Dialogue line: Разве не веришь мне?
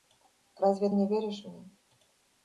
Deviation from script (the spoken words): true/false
false